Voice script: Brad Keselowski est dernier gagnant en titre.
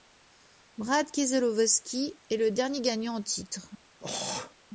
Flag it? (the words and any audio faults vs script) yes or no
yes